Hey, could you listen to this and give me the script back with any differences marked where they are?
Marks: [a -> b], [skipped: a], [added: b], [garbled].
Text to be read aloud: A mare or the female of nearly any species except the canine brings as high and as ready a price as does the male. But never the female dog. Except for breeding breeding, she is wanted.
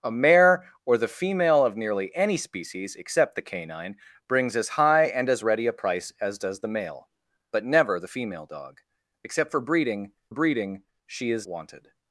A mare or the female of nearly any species except the canine brings as high and as ready a price as does the male. But never the female dog. Except for breeding breeding, she is wanted.